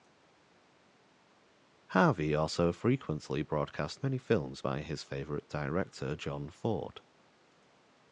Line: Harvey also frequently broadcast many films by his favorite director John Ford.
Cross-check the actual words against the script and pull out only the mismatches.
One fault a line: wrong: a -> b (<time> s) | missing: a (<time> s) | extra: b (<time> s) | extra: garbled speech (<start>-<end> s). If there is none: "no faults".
no faults